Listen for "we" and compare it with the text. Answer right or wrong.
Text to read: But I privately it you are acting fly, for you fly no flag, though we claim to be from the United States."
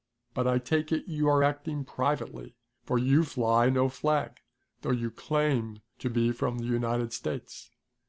wrong